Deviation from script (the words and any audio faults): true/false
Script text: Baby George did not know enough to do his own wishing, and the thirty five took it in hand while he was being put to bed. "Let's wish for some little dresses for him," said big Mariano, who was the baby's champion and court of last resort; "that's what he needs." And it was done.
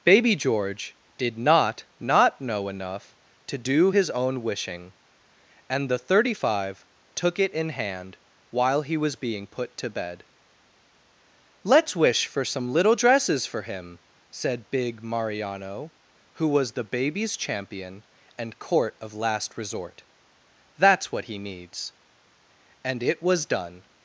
true